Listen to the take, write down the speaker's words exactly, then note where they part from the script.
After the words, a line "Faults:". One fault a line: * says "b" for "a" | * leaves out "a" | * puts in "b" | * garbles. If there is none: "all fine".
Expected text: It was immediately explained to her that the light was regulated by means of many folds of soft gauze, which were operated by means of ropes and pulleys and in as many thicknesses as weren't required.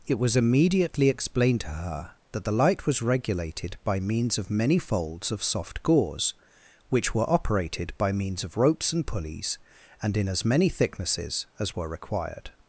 It was immediately explained to her that the light was regulated by means of many folds of soft gauze, which were operated by means of ropes and pulleys and in as many thicknesses as were required.
Faults:
* says "were" for "weren't"